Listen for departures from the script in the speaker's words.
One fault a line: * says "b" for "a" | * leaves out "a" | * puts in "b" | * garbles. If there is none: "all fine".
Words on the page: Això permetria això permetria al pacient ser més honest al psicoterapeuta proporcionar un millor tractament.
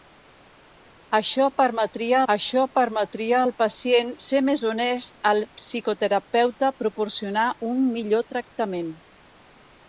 all fine